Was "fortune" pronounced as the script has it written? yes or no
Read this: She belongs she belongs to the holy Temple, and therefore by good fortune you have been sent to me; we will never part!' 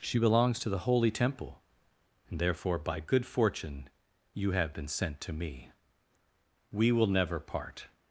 yes